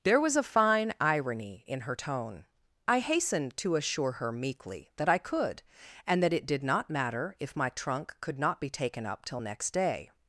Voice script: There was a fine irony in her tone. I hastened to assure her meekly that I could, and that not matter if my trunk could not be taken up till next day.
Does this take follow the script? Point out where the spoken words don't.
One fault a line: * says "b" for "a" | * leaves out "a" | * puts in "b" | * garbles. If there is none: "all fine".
* puts in "it did"